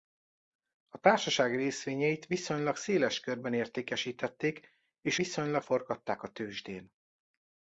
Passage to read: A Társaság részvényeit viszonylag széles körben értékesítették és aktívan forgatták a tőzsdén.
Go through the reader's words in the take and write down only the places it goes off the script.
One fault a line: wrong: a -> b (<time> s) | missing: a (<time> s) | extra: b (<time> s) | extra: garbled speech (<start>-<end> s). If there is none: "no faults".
wrong: aktívan -> viszonylag (5.1 s)